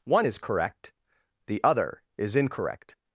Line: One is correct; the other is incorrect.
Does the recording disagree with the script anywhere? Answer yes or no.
no